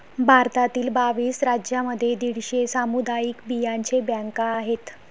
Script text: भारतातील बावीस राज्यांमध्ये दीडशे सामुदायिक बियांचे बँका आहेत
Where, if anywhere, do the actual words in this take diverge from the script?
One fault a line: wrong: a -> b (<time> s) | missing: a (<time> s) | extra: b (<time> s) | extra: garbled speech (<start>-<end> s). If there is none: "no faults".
no faults